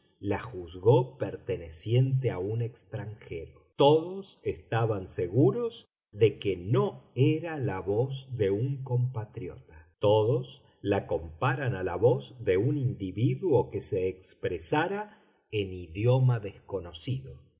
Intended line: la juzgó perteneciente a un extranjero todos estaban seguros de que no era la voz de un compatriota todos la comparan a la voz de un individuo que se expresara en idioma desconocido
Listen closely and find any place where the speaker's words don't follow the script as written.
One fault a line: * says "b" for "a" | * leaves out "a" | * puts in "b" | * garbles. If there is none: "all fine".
all fine